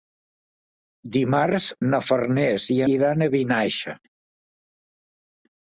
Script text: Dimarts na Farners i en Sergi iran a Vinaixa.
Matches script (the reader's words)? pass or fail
fail